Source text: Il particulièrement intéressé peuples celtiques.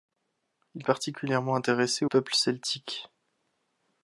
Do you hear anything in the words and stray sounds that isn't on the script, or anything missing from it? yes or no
no